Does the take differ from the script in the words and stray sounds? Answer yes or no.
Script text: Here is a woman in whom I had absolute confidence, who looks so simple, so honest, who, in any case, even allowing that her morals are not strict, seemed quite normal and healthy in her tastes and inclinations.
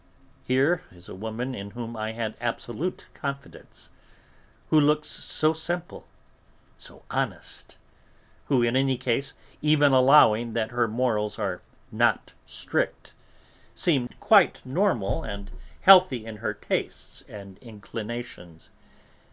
yes